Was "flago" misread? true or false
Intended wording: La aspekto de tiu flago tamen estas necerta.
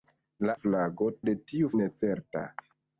true